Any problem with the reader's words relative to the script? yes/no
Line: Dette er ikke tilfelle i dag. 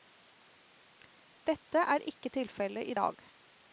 no